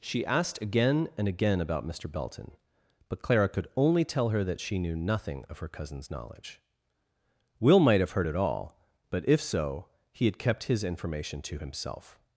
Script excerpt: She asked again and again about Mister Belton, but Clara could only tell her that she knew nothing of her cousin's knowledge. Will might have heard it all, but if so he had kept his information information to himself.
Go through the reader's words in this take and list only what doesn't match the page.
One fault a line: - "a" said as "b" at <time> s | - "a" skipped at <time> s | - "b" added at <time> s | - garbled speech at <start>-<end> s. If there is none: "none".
- "information" skipped at 11.4 s